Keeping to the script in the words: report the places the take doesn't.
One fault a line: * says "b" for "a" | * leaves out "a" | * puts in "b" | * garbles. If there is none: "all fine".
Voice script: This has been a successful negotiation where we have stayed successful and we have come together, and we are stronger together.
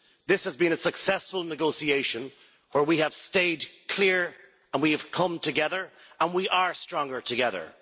* says "clear" for "successful"